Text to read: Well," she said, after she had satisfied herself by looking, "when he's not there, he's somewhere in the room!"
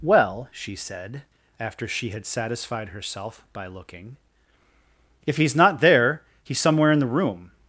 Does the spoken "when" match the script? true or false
false